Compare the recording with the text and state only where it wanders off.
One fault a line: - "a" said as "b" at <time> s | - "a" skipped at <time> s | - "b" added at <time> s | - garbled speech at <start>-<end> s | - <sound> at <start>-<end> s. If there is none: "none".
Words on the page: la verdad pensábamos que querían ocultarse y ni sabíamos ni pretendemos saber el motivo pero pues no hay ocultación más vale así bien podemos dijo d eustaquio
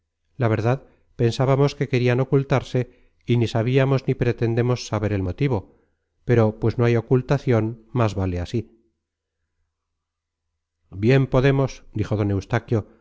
none